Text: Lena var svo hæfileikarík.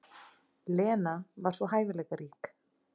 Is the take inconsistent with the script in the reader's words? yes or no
no